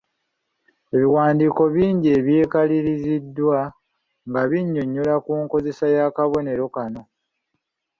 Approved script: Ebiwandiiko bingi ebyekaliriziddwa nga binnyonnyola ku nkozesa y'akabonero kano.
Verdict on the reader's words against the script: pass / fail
pass